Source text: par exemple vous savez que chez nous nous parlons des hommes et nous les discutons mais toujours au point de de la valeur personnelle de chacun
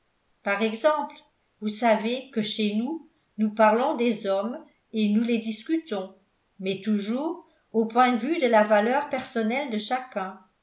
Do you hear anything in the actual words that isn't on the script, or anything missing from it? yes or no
yes